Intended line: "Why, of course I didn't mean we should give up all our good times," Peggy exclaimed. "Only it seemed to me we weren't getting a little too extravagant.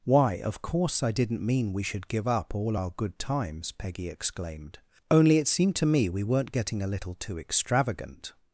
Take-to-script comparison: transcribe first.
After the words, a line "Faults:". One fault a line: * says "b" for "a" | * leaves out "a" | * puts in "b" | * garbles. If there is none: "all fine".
"Why, of course I didn't mean we should give up all our good times," Peggy exclaimed. "Only it seemed to me we weren't getting a little too extravagant.
Faults:
all fine